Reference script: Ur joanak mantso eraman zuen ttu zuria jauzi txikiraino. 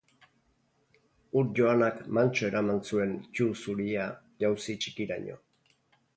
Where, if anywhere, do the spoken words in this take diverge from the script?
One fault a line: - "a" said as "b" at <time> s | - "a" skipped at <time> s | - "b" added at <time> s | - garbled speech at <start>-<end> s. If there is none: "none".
none